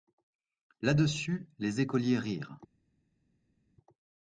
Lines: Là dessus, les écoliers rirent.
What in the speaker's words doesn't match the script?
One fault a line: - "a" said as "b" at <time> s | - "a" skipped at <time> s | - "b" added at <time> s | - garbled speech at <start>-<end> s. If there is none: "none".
none